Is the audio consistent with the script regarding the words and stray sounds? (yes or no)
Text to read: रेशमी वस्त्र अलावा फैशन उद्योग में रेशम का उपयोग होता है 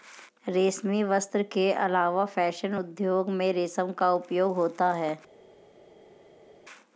no